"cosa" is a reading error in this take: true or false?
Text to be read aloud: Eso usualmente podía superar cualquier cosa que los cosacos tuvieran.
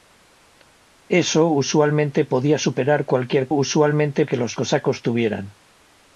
true